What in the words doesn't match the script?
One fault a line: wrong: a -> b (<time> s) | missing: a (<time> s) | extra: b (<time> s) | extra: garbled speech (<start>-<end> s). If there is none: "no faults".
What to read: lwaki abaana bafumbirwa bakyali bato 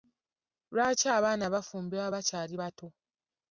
no faults